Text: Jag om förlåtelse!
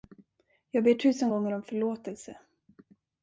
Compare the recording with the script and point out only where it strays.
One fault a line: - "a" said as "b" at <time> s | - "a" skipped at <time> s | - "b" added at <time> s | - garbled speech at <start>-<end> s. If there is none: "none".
- "ber tusen gånger" added at 0.8 s